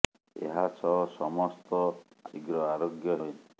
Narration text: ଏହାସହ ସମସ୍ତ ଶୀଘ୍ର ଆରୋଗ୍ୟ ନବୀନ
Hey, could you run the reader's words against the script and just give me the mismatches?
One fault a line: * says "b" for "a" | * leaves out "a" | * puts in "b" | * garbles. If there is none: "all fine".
all fine